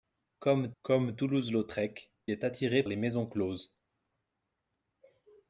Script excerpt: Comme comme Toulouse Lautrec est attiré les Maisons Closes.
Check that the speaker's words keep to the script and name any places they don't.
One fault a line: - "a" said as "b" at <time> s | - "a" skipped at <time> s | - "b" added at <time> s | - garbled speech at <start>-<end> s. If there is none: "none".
none